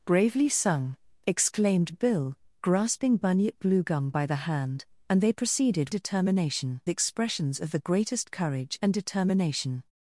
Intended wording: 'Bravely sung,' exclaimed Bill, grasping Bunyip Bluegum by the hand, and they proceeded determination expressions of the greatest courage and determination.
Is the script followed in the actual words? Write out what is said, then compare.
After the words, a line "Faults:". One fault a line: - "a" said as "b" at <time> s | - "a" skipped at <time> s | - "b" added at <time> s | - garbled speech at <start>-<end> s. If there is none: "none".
'Bravely sung,' exclaimed Bill, grasping Bunyip Bluegum by the hand, and they proceeded determination expressions of the greatest courage and determination.
Faults:
none